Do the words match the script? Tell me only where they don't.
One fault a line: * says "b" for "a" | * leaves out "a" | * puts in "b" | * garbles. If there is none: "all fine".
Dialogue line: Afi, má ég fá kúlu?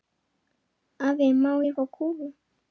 all fine